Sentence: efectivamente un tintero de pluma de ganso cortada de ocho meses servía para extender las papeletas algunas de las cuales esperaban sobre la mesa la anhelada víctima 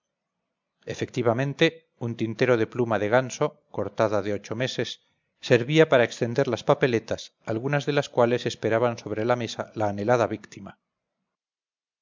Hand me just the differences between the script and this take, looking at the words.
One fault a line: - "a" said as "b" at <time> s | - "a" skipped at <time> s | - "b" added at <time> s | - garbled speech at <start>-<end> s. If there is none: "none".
none